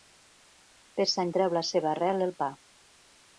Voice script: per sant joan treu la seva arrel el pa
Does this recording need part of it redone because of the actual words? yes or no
yes